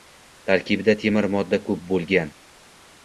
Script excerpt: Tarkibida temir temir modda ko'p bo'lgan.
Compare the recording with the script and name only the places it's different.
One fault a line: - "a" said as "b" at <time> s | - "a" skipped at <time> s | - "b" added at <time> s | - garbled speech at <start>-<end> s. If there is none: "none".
- "temir" skipped at 1.3 s